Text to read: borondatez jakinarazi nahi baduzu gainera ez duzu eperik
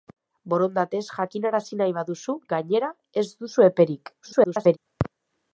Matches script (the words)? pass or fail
fail